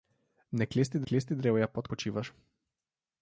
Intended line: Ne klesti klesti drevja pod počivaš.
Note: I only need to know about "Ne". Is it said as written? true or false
true